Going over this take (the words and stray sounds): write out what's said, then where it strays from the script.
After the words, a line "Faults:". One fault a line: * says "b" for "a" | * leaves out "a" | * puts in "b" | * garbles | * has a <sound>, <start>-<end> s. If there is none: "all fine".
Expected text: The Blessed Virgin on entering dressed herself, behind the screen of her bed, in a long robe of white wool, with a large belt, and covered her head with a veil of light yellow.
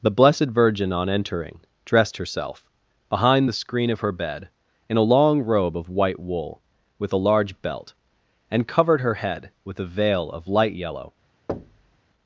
The Blessed Virgin on entering dressed herself, behind the screen of her bed, in a long robe of white wool, with a large belt, and covered her head with a veil of light yellow.
Faults:
* has a thud, 11.5-12.0 s